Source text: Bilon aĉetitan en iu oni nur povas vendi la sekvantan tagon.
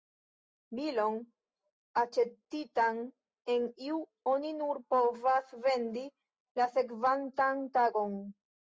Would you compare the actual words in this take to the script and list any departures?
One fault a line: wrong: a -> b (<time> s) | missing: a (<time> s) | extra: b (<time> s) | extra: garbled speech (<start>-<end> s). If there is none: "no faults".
no faults